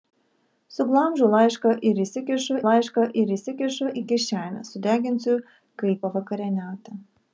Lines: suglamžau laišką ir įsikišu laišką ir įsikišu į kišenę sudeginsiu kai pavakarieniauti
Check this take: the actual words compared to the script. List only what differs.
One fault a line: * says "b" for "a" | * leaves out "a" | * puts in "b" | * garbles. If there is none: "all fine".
all fine